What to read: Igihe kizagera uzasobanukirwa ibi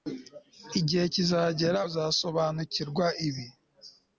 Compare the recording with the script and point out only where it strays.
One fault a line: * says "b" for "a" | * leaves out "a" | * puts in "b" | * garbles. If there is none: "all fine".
all fine